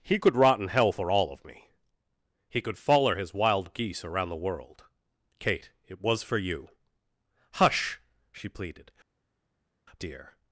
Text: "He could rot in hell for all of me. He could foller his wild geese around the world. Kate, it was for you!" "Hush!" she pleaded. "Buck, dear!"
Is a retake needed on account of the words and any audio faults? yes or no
yes